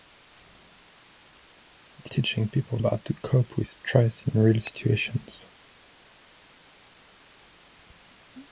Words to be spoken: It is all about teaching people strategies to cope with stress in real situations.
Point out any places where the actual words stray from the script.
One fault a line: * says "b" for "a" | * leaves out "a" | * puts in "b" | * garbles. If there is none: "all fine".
* leaves out "is all about"
* says "about" for "strategies"